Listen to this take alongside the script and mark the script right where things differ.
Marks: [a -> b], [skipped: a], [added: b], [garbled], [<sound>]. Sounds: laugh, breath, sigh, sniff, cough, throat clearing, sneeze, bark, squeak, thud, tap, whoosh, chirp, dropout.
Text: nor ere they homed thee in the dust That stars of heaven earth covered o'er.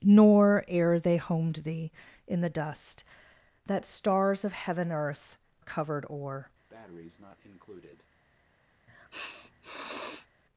nor ere they homed thee in the dust That stars of heaven earth covered o'er. [breath] [sniff]